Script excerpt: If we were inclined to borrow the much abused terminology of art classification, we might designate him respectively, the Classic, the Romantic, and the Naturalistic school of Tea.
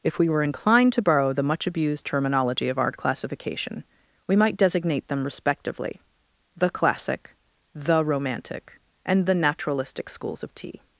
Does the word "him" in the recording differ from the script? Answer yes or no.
yes